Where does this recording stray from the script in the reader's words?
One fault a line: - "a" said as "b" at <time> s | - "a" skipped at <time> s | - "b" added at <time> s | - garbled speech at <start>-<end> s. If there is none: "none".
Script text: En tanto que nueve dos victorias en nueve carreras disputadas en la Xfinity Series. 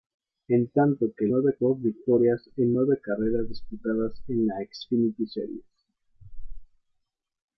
none